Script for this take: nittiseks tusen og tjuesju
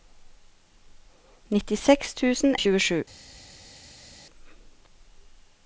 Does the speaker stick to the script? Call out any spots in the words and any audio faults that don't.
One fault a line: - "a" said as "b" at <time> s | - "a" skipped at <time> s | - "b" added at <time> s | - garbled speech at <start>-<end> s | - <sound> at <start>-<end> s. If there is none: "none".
none